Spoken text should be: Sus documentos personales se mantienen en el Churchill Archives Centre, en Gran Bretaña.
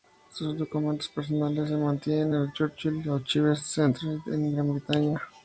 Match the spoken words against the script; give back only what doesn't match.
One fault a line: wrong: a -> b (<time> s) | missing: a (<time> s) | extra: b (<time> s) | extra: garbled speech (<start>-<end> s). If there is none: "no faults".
no faults